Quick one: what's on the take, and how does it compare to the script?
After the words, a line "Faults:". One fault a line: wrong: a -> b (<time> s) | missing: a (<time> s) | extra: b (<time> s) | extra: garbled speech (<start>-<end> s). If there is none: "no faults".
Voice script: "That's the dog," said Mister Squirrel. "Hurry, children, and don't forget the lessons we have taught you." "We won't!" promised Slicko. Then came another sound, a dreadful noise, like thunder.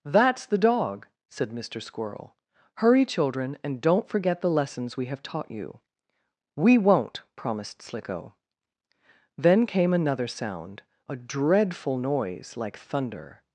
"That's the dog," said Mister Squirrel. "Hurry, children, and don't forget the lessons we have taught you." "We won't!" promised Slicko. Then came another sound, a dreadful noise, like thunder.
Faults:
no faults